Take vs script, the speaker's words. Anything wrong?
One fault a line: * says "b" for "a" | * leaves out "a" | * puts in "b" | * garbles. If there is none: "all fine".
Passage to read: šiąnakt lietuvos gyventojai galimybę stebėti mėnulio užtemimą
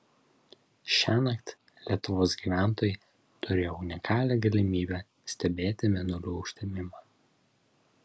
* puts in "turėjo unikalią"